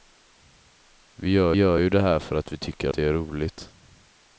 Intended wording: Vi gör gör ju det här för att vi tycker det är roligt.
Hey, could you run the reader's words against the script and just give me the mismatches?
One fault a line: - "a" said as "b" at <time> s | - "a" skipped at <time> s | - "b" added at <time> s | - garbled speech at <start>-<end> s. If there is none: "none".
none